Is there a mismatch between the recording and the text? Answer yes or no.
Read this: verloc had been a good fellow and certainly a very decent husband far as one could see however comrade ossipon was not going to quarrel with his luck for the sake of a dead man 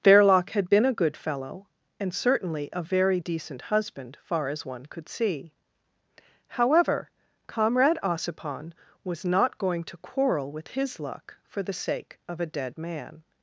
no